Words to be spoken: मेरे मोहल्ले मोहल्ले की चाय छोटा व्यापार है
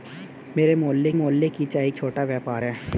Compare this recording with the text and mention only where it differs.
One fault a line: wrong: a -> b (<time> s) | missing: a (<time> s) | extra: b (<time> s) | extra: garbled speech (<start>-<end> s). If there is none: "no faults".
no faults